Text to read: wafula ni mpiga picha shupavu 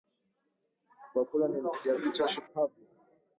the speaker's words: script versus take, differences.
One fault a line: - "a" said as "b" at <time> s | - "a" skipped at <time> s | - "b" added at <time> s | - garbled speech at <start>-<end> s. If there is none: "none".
none